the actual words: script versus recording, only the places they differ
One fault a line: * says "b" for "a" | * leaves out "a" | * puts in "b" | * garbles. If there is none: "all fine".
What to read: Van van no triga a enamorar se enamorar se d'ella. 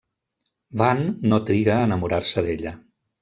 * leaves out "van"
* leaves out "enamorar se"